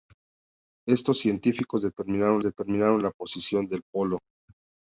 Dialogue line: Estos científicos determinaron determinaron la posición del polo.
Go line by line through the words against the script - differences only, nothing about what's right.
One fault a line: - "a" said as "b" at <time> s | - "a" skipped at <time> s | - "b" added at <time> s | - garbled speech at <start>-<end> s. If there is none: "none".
none